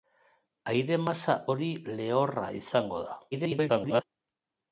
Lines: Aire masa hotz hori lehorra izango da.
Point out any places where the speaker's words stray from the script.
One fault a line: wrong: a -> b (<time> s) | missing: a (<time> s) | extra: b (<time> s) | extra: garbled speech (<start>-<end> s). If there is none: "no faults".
missing: hotz (1.4 s)
extra: garbled speech (3.3-4.0 s)